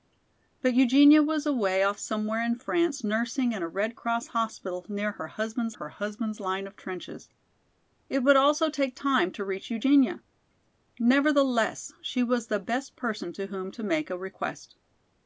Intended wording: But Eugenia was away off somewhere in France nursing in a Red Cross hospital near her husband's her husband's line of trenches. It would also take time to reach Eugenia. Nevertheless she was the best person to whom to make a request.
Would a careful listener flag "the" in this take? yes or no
no